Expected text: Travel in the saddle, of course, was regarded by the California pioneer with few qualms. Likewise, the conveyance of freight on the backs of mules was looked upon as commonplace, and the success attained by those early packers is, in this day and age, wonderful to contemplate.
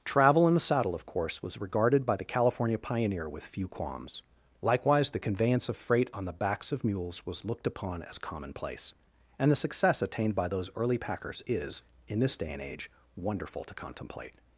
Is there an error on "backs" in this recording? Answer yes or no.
no